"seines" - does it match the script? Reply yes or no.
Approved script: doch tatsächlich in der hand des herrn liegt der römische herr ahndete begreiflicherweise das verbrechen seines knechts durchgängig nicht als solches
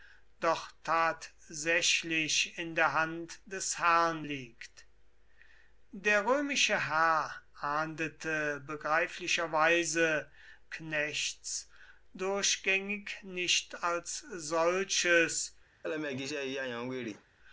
no